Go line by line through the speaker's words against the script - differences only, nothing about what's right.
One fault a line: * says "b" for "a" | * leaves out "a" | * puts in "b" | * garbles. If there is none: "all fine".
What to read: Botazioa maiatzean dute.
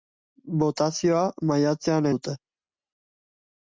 all fine